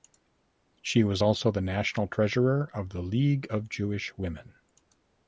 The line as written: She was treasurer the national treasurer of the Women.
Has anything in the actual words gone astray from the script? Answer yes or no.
yes